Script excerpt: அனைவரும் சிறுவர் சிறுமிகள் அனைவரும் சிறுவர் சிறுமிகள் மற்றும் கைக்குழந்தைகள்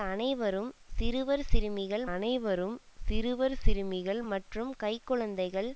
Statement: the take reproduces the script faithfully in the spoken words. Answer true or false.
true